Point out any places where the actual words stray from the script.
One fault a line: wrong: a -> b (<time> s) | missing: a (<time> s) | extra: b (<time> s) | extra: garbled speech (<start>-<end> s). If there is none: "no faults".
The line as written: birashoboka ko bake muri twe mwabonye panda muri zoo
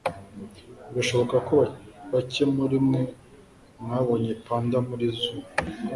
wrong: twe -> mwe (2.9 s)